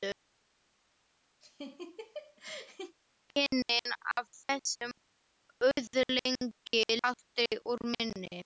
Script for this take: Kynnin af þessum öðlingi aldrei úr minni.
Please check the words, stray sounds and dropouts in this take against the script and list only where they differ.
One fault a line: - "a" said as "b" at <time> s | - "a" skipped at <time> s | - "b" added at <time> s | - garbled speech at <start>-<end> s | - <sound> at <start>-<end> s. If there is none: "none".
- laugh at 1.4-3.0 s